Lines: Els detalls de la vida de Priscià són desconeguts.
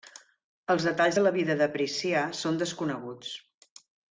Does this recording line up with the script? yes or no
yes